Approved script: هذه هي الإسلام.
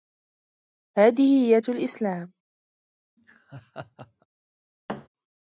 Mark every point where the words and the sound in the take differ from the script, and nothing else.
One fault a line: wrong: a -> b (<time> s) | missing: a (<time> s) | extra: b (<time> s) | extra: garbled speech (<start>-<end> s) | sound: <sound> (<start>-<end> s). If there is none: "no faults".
sound: laugh (3.2-4.3 s)
sound: thud (4.9-5.1 s)